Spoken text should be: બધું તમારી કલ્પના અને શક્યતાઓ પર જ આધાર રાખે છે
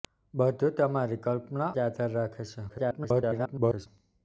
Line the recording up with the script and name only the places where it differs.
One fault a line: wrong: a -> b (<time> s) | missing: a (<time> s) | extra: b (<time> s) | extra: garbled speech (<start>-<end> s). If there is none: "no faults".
missing: અને શક્યતાઓ પર (1.7 s)
extra: garbled speech (2.7-3.9 s)